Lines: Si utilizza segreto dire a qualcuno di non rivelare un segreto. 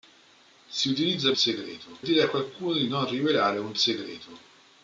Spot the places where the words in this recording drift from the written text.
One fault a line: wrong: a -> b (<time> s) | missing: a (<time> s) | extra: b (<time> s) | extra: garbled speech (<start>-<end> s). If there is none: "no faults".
no faults